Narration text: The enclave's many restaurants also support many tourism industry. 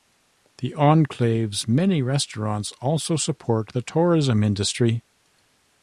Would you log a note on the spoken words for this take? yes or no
yes